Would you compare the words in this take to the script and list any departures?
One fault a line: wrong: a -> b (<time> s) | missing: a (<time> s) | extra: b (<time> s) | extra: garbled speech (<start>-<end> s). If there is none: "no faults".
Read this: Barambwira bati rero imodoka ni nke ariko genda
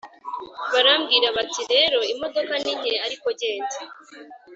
no faults